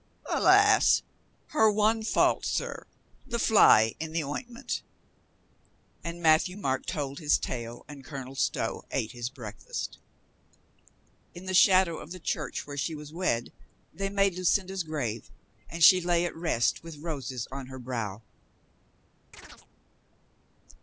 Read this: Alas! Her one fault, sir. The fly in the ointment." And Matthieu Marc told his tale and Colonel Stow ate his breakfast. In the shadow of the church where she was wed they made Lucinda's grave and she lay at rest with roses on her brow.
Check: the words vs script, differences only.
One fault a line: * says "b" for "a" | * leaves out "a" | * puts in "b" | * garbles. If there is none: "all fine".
all fine